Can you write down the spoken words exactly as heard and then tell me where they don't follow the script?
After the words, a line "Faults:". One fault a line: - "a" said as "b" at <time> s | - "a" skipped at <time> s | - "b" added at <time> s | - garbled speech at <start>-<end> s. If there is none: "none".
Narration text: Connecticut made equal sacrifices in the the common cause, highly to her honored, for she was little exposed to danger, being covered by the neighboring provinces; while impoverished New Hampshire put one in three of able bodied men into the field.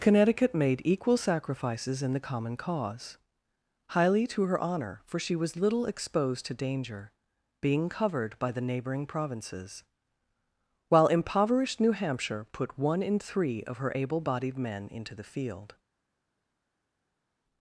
Connecticut made equal sacrifices in the common cause, highly to her honor, for she was little exposed to danger, being covered by the neighboring provinces; while impoverished New Hampshire put one in three of her able bodied men into the field.
Faults:
- "the" skipped at 2.2 s
- "honored" said as "honor" at 4.6 s
- "her" added at 13.8 s